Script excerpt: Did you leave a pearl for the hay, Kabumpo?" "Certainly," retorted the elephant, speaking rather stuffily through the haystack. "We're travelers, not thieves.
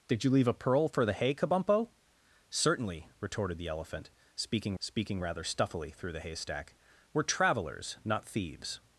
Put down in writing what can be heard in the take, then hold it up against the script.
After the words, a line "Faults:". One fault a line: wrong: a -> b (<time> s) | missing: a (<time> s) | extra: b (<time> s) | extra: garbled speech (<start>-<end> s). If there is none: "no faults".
Did you leave a pearl for the hay, Kabumpo?" "Certainly," retorted the elephant, speaking speaking rather stuffily through the haystack. "We're travelers, not thieves.
Faults:
extra: speaking (4.8 s)